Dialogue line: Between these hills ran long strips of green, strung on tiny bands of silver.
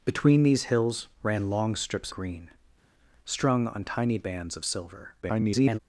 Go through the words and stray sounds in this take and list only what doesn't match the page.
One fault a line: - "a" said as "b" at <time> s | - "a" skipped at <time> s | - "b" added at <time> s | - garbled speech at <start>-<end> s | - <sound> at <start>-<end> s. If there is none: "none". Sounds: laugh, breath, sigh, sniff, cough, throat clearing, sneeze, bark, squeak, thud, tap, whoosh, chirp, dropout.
- "of" skipped at 2.1 s
- garbled speech at 5.2-5.8 s